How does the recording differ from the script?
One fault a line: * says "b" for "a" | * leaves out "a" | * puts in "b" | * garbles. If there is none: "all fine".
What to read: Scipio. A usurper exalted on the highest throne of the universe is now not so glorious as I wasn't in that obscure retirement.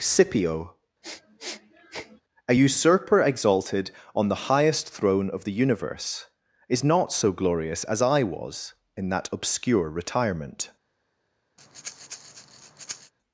* leaves out "now"
* says "was" for "wasn't"